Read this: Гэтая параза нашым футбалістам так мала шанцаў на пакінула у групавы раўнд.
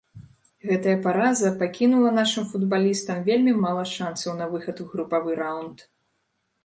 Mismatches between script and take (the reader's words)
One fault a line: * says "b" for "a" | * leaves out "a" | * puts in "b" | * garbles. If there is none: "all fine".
* puts in "пакінула"
* says "вельмі" for "так"
* says "выхад" for "пакінула"